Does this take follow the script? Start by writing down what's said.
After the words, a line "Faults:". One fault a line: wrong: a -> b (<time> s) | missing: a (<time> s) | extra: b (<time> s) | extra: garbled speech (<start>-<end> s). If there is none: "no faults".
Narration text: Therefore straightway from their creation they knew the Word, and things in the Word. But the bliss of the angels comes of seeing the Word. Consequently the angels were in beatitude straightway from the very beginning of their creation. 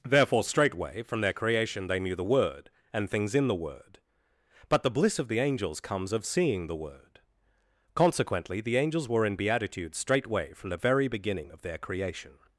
Therefore straightway from their creation they knew the Word, and things in the Word. But the bliss of the angels comes of seeing the Word. Consequently the angels were in beatitude straightway from the very beginning of their creation.
Faults:
no faults